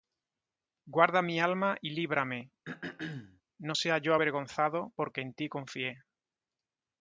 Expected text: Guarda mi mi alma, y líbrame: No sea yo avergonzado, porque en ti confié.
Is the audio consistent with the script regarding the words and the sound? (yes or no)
no